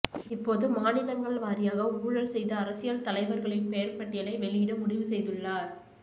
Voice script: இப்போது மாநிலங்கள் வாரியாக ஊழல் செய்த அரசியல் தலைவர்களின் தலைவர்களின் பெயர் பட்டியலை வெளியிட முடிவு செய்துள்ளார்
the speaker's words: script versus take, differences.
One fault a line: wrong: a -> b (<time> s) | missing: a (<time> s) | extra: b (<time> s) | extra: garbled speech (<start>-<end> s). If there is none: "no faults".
missing: தலைவர்களின் (3.7 s)